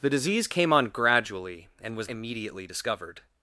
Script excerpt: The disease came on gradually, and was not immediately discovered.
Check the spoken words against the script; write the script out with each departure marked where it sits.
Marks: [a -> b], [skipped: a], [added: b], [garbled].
The disease came on gradually, and was [skipped: not] immediately discovered.